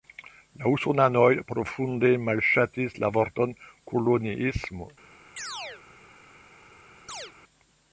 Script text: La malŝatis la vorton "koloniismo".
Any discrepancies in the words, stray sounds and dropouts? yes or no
yes